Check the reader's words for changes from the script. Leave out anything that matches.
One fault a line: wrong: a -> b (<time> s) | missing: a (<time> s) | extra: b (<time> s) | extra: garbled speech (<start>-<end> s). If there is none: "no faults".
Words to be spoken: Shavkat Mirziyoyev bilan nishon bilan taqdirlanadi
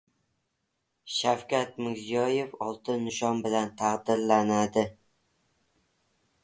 wrong: bilan -> oltin (2.7 s)